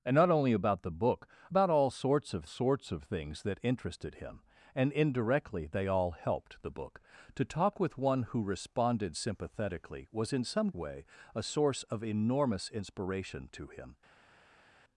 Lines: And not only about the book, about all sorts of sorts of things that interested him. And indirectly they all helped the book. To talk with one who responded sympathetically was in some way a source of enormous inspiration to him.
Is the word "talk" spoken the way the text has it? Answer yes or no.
yes